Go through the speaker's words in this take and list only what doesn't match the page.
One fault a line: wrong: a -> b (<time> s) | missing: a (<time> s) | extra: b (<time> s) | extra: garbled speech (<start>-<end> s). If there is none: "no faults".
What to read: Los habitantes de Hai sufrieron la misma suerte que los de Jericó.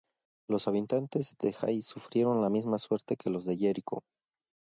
no faults